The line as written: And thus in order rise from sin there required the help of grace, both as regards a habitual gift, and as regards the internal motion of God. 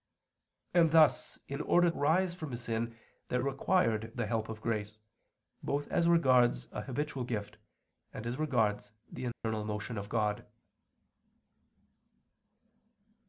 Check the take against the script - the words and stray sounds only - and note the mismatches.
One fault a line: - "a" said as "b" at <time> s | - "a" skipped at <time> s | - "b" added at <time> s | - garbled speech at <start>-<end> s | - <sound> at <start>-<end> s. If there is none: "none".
- dropout at 9.3-9.4 s